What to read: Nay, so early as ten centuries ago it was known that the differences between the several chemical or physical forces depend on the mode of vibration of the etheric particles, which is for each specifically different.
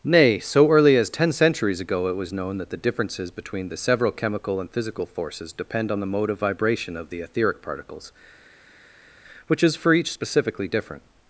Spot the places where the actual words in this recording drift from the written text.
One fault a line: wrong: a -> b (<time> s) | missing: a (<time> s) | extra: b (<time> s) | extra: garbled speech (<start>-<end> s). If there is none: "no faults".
wrong: or -> and (4.6 s)